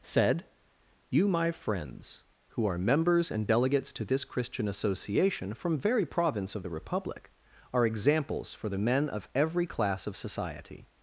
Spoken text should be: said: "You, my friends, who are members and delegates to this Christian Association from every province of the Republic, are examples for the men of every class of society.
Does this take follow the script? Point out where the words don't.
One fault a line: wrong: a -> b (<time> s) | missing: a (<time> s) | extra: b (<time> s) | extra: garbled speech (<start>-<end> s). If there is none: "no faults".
wrong: every -> very (5.8 s)